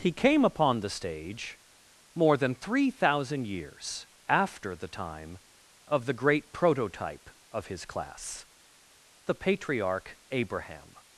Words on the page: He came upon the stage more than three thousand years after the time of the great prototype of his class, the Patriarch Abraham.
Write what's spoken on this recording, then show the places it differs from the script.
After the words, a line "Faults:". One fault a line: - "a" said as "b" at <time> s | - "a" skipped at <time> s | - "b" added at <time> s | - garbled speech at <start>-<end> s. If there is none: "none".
He came upon the stage more than three thousand years after the time of the great prototype of his class, the Patriarch Abraham.
Faults:
none